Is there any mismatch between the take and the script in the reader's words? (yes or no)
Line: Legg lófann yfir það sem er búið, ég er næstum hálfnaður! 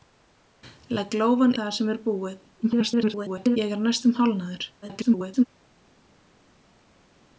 yes